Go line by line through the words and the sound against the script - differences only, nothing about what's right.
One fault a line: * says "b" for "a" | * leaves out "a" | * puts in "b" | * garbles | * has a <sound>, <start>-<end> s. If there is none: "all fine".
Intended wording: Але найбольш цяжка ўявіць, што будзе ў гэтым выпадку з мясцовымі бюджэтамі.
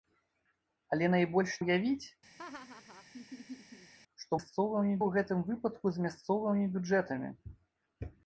* leaves out "цяжка"
* has a laugh, 2.4-3.9 s
* says "мясцовымі" for "будзе"